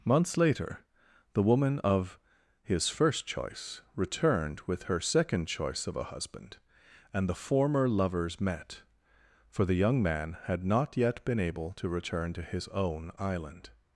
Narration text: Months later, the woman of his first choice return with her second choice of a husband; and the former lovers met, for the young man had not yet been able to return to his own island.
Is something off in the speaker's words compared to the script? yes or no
yes